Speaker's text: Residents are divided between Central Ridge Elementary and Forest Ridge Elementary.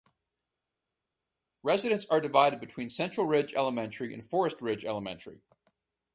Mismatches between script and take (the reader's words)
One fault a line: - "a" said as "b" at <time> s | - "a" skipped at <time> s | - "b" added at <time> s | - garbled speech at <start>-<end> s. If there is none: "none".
none